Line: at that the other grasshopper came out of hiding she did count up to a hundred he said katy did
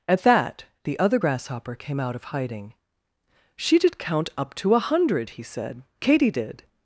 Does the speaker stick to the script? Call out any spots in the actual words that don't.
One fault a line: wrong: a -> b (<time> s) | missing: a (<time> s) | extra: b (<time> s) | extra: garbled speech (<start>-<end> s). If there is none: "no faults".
no faults